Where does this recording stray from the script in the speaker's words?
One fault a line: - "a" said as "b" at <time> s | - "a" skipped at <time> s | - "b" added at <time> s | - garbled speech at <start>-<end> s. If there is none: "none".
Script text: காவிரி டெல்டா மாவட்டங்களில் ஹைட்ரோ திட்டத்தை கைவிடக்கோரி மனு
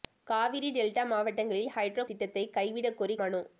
none